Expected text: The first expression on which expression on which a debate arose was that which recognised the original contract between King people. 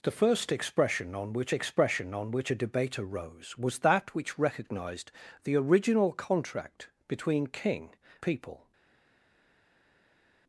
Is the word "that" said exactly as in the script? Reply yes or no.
yes